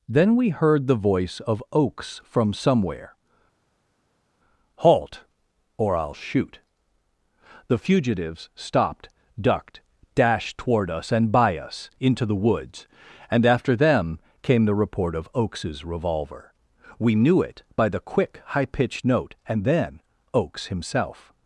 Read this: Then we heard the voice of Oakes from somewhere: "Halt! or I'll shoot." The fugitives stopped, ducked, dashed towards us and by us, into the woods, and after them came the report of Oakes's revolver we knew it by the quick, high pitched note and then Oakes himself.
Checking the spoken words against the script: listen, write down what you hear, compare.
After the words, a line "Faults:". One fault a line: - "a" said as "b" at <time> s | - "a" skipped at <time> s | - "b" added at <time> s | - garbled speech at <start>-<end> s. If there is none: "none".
Then we heard the voice of Oakes from somewhere: "Halt! or I'll shoot." The fugitives stopped, ducked, dashed toward us and by us, into the woods, and after them came the report of Oakes's revolver we knew it by the quick, high pitched note and then Oakes himself.
Faults:
- "towards" said as "toward" at 10.6 s